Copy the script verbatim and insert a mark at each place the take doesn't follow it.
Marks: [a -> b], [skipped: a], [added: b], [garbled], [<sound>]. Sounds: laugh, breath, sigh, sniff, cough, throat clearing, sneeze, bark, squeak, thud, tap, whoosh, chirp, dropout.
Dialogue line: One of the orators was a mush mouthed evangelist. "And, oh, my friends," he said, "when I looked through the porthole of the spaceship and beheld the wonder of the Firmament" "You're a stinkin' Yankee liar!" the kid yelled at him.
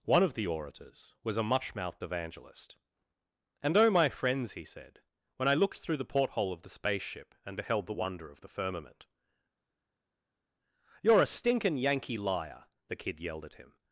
One of the orators was a [mush -> much] mouthed evangelist. "And, oh, my friends," he said, "when I looked through the porthole of the spaceship and beheld the wonder of the Firmament" "You're a stinkin' Yankee liar!" the kid yelled at him.